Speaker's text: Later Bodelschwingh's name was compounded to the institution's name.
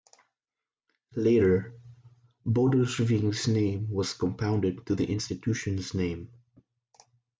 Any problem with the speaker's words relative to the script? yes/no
no